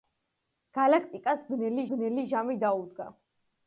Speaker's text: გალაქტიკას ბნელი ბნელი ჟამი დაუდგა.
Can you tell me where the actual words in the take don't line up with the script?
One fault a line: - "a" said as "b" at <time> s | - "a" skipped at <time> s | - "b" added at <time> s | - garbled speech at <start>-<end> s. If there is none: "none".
none